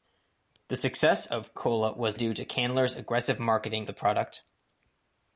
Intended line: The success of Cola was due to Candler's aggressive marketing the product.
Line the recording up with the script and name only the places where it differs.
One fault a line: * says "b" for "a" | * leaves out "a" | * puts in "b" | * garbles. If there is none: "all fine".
all fine